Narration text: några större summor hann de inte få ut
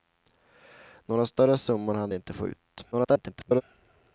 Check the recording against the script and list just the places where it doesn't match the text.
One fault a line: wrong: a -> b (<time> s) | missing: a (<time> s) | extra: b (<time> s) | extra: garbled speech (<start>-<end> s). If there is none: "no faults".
extra: garbled speech (2.9-3.6 s)